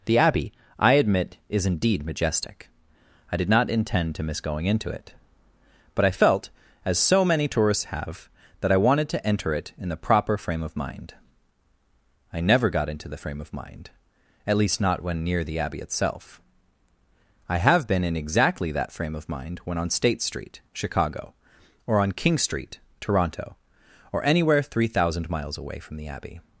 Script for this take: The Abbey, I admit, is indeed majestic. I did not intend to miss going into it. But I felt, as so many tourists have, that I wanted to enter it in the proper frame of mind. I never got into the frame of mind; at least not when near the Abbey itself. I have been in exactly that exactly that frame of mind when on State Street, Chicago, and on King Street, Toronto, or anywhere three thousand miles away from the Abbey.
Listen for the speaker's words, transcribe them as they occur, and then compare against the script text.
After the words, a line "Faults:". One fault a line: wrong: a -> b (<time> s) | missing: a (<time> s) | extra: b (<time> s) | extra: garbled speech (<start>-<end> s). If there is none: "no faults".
The Abbey, I admit, is indeed majestic. I did not intend to miss going into it. But I felt, as so many tourists have, that I wanted to enter it in the proper frame of mind. I never got into the frame of mind; at least not when near the Abbey itself. I have been in exactly that frame of mind when on State Street, Chicago, or on King Street, Toronto, or anywhere three thousand miles away from the Abbey.
Faults:
missing: exactly that (18.9 s)
wrong: and -> or (21.9 s)